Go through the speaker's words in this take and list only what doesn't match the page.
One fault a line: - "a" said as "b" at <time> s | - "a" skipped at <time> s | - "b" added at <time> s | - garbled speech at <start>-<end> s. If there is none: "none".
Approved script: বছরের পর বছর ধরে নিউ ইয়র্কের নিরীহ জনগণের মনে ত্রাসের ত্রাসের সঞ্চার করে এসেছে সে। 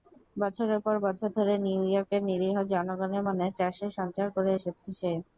- "ত্রাসের" skipped at 3.9 s